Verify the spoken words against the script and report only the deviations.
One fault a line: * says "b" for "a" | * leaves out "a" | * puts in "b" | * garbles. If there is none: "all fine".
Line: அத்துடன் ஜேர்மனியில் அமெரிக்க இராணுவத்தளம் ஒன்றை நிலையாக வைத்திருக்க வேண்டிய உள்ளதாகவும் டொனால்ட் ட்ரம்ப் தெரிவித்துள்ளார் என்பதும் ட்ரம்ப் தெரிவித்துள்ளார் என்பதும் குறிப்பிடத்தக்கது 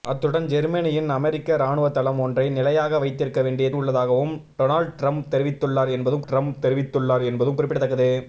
all fine